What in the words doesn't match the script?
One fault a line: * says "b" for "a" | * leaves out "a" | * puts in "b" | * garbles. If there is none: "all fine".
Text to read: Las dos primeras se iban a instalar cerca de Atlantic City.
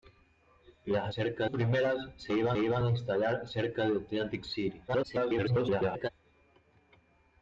* says "cerca" for "dos"
* puts in "iban"
* garbles